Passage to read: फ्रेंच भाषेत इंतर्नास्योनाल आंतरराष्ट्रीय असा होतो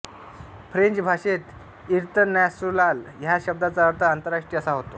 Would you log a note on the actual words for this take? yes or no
yes